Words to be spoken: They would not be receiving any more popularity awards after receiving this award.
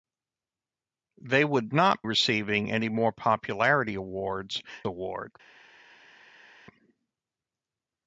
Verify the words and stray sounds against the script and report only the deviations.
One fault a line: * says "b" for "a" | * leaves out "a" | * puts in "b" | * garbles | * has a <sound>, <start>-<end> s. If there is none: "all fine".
* leaves out "be"
* leaves out "after receiving this"